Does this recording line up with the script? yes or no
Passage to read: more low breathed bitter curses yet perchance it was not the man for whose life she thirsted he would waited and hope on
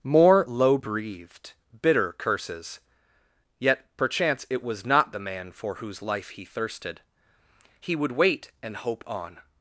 no